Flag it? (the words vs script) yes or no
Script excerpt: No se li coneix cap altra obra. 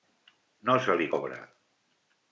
yes